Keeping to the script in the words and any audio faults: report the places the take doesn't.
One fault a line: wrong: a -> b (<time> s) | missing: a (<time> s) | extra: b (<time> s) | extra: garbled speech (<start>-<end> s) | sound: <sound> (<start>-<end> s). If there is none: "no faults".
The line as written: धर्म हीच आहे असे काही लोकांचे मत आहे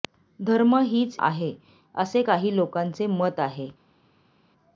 no faults